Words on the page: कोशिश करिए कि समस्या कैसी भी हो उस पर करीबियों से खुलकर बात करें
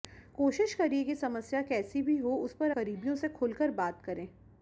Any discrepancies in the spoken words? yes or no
no